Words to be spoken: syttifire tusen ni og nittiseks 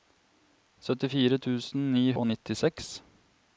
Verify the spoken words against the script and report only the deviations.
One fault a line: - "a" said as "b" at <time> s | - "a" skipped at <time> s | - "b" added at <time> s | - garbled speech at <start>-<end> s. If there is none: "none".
none